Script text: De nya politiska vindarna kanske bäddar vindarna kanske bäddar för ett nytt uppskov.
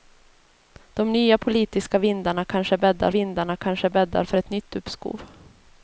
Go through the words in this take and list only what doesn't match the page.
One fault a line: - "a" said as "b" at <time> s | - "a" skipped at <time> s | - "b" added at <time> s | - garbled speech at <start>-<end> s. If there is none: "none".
none